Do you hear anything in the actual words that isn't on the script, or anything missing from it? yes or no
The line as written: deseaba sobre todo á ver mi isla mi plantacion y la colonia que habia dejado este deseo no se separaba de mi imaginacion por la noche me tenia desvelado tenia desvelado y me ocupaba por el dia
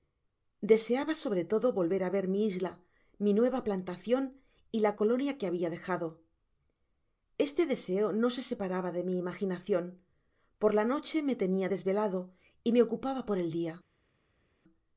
yes